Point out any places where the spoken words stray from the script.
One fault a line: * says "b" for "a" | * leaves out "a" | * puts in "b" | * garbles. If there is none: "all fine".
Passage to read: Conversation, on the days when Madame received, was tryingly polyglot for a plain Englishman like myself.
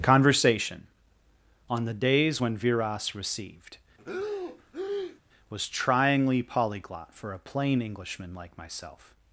* says "Viras" for "Madame"